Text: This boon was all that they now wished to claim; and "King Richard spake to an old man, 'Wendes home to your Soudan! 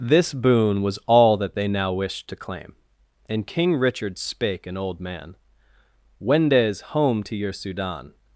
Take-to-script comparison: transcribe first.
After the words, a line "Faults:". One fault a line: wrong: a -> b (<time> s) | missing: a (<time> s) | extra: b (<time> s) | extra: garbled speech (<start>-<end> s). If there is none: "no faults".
This boon was all that they now wished to claim; and "King Richard spake an old man, 'Wendes home to your Soudan!
Faults:
missing: to (4.7 s)